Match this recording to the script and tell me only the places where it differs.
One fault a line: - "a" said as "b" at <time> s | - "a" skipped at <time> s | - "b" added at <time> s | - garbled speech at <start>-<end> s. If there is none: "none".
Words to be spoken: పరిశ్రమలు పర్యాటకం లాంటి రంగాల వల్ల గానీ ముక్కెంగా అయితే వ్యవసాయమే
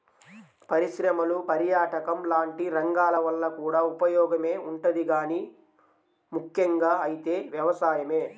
- "కూడా ఉపయోగమే ఉంటది" added at 3.6 s